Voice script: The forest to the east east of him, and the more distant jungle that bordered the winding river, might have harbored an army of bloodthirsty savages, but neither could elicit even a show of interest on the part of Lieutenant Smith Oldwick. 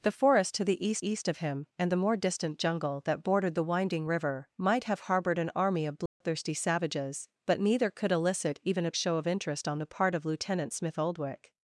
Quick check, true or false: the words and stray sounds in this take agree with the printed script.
false